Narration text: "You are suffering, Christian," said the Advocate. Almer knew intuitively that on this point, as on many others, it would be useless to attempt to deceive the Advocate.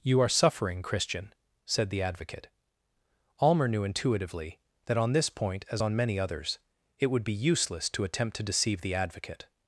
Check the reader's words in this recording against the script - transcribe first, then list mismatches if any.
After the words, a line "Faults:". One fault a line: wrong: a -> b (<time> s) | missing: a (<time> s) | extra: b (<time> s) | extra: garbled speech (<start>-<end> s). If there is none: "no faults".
"You are suffering, Christian," said the Advocate. Almer knew intuitively that on this point, as on many others, it would be useless to attempt to deceive the Advocate.
Faults:
no faults